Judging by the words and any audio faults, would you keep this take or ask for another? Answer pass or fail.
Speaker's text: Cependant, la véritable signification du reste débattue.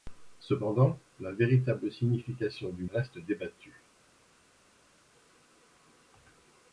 pass